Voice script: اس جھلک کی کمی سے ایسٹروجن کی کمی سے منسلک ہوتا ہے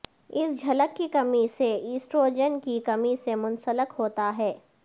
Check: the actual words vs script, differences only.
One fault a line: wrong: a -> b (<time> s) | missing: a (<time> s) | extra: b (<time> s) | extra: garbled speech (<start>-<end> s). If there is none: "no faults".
no faults